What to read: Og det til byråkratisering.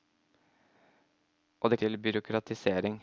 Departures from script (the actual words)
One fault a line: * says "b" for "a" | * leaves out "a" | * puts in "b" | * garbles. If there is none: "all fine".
all fine